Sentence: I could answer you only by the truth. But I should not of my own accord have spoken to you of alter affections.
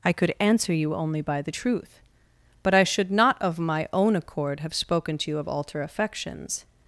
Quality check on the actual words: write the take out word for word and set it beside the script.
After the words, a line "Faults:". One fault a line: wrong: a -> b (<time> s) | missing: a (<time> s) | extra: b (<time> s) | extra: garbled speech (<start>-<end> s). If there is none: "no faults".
I could answer you only by the truth. But I should not of my own accord have spoken to you of alter affections.
Faults:
no faults